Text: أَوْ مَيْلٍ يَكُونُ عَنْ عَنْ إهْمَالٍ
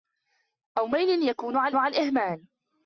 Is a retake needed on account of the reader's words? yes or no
no